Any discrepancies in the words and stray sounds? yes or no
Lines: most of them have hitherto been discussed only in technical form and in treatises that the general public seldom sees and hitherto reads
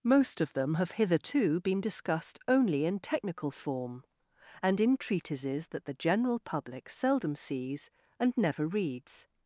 yes